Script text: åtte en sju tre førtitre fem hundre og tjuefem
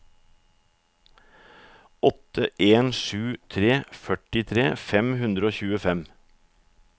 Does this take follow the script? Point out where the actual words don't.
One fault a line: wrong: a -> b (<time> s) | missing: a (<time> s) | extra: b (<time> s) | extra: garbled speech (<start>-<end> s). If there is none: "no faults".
no faults